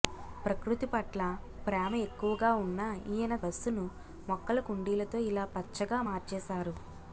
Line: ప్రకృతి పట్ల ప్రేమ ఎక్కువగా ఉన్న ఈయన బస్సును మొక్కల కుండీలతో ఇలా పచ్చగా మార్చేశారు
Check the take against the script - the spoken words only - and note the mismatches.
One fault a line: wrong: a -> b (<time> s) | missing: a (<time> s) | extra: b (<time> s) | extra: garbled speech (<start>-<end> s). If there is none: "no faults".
no faults